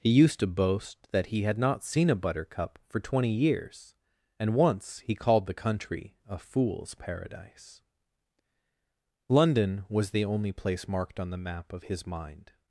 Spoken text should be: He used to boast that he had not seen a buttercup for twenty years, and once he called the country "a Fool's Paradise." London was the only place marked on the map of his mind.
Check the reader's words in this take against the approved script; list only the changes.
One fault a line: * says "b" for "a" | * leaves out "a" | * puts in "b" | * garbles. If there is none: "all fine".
all fine